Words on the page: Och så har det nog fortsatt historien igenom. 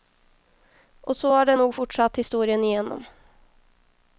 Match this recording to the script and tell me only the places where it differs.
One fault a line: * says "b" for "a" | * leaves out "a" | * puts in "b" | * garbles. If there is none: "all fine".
all fine